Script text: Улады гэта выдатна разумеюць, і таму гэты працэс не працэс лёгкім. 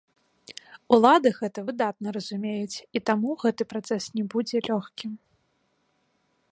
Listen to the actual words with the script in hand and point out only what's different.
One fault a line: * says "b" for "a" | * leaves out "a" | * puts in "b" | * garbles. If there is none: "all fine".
* says "будзе" for "працэс"